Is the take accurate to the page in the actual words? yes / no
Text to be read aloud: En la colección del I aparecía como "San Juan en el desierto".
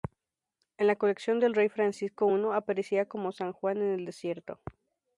no